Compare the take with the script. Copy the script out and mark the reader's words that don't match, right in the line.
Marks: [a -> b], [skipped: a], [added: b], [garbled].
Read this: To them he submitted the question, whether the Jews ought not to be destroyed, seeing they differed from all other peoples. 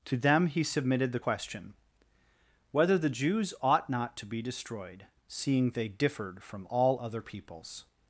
To them he submitted the question, whether the Jews ought not to be destroyed, seeing they differed from all other peoples.